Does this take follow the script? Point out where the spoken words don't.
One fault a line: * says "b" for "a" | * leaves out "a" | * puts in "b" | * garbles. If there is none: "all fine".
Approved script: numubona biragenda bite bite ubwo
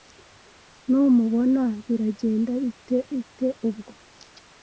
all fine